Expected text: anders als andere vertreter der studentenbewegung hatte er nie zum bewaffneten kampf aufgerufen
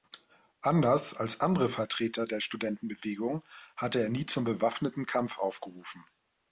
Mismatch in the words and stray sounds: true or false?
false